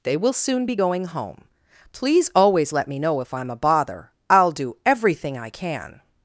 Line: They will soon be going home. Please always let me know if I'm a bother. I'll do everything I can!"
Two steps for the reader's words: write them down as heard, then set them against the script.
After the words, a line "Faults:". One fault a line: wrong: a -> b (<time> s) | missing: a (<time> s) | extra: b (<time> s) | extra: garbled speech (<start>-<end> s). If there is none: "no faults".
They will soon be going home. Please always let me know if I'm a bother. I'll do everything I can!"
Faults:
no faults